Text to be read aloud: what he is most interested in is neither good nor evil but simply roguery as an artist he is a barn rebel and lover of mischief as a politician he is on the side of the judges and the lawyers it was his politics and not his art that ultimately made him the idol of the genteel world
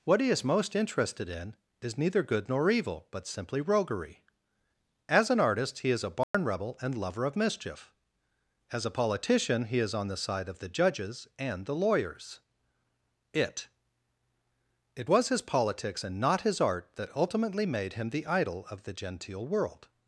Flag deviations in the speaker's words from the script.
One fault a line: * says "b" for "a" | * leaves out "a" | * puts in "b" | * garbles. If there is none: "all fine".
* puts in "it"